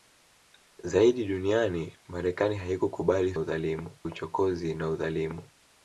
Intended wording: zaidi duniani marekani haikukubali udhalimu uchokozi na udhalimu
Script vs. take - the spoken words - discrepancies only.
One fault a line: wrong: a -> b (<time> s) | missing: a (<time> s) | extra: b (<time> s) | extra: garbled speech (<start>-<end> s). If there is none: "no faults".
no faults